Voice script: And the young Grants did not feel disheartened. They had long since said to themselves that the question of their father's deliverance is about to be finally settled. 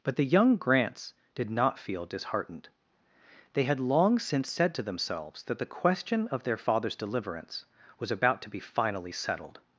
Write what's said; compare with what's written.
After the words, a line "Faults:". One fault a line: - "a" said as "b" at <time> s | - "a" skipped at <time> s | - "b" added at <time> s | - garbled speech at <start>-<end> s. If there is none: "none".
But the young Grants did not feel disheartened. They had long since said to themselves that the question of their father's deliverance was about to be finally settled.
Faults:
- "And" said as "But" at 0.0 s
- "is" said as "was" at 8.0 s